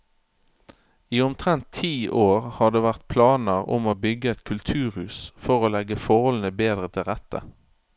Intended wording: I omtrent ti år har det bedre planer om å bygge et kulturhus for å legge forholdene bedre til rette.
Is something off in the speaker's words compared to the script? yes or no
yes